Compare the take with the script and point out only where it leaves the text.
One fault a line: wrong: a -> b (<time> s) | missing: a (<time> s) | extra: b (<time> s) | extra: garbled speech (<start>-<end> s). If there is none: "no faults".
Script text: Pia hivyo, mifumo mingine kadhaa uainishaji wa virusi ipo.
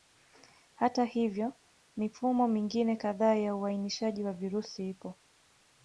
wrong: Pia -> Hata (0.8 s)
extra: ya (3.3 s)